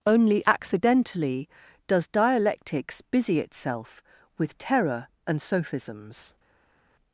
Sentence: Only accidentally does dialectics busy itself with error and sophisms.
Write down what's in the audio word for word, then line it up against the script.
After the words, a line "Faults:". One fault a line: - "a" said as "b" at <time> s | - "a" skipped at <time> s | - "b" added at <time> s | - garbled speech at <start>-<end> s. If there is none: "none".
Only accidentally does dialectics busy itself with terror and sophisms.
Faults:
- "error" said as "terror" at 4.6 s